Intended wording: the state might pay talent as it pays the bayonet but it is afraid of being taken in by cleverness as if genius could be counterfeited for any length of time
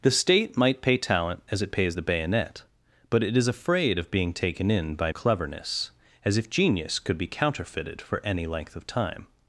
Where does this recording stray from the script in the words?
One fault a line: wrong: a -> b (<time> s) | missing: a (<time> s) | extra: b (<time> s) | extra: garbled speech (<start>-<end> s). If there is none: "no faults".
no faults